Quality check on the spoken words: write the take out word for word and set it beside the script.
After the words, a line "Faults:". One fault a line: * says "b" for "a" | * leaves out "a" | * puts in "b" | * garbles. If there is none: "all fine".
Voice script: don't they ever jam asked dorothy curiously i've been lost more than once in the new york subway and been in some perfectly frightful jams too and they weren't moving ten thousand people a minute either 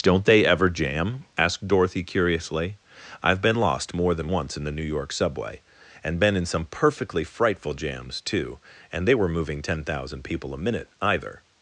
don't they ever jam asked dorothy curiously i've been lost more than once in the new york subway and been in some perfectly frightful jams too and they were moving ten thousand people a minute either
Faults:
* says "were" for "weren't"